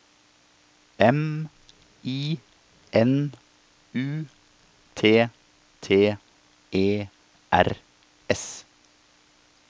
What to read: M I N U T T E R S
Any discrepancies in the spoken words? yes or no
no